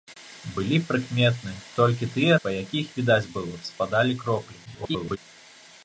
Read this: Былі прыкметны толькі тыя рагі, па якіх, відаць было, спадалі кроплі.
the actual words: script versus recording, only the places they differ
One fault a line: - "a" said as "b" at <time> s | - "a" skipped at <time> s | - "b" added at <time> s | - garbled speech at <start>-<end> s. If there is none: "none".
- "рагі" skipped at 2.4 s
- garbled speech at 4.7-5.2 s